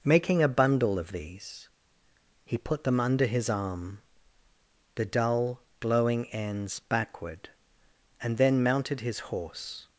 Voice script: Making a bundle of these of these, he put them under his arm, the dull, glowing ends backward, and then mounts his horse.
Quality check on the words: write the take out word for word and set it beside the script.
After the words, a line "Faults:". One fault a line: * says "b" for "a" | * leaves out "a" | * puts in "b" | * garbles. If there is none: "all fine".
Making a bundle of these, he put them under his arm, the dull, glowing ends backward, and then mounted his horse.
Faults:
* leaves out "of these"
* says "mounted" for "mounts"